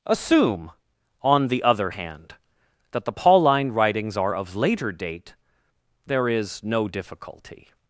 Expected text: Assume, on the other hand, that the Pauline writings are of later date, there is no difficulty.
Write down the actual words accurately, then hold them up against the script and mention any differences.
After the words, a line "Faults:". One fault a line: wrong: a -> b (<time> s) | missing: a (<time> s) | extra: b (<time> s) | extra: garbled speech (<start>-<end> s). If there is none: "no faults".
Assume, on the other hand, that the Pauline writings are of later date, there is no difficulty.
Faults:
no faults